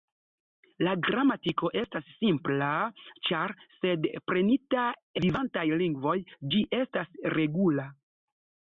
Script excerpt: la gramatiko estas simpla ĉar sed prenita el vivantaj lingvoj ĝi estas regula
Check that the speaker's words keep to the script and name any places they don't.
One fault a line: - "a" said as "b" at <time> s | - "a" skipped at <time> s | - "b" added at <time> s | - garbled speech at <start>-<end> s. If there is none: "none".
- "el" skipped at 4.9 s